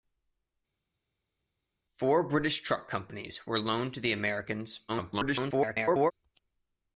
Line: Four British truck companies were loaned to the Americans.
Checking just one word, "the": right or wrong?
right